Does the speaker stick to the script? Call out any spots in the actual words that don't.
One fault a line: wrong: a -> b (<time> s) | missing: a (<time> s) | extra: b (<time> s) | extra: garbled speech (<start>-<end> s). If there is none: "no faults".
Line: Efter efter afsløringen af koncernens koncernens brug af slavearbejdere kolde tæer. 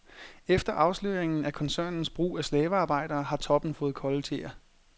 missing: efter (0.7 s)
missing: koncernens (2.1 s)
extra: har toppen fået (3.2 s)